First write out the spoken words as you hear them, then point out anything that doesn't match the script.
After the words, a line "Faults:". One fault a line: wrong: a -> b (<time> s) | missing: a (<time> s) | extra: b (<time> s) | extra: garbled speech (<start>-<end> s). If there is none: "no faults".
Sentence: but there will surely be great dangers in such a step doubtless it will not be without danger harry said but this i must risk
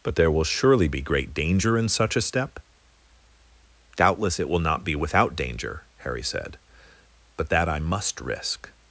but there will surely be great danger in such a step doubtless it will not be without danger harry said but that i must risk
Faults:
wrong: dangers -> danger (1.3 s)
wrong: this -> that (7.5 s)